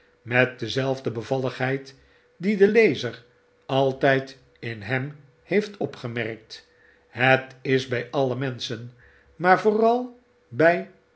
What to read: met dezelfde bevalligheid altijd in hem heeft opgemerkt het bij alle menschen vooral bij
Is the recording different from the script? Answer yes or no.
yes